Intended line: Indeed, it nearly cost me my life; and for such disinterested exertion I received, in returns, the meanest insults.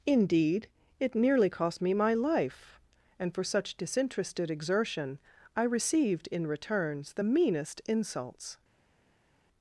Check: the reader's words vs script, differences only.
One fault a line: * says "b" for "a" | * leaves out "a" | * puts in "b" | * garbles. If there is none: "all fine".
all fine